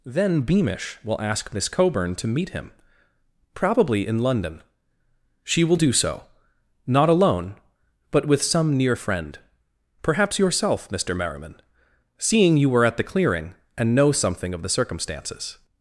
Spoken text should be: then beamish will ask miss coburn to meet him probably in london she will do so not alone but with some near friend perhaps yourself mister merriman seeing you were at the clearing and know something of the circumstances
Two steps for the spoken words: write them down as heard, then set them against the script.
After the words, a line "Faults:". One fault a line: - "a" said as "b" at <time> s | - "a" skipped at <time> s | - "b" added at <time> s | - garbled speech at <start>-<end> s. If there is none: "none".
then beamish will ask miss coburn to meet him probably in london she will do so not alone but with some near friend perhaps yourself mister merriman seeing you were at the clearing and know something of the circumstances
Faults:
none